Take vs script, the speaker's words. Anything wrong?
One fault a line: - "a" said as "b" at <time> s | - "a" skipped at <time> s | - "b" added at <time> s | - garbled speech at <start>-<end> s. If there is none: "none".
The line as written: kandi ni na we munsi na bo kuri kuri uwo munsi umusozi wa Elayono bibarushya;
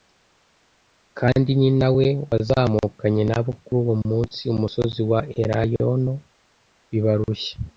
- "munsi" said as "wazamukanye" at 2.3 s
- "kuri" skipped at 3.8 s